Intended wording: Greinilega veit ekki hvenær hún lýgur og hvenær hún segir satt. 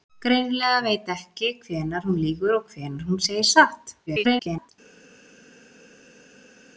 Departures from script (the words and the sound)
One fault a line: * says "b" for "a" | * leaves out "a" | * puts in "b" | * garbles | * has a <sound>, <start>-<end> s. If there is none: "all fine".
* garbles